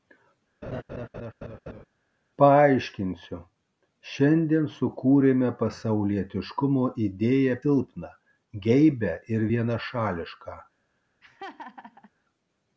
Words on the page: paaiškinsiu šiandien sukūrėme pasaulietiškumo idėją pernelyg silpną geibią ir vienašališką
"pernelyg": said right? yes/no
no